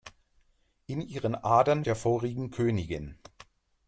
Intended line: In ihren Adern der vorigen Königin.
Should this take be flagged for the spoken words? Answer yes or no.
no